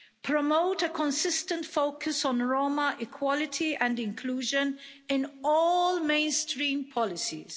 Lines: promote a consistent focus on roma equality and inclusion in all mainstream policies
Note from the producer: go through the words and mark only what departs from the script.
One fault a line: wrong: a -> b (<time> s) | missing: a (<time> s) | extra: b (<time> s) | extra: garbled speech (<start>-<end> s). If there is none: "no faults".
no faults